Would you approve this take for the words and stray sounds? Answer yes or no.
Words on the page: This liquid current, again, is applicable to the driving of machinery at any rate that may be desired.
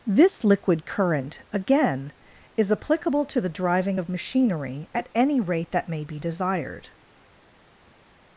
yes